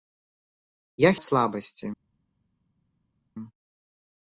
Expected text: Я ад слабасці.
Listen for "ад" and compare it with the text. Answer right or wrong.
right